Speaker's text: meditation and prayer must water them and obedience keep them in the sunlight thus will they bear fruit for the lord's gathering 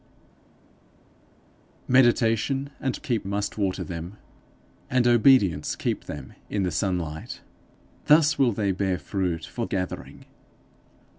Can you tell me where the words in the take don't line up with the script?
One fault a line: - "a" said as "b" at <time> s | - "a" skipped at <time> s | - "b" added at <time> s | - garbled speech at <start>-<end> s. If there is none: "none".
- "prayer" said as "keep" at 3.0 s
- "the lord's" skipped at 9.6 s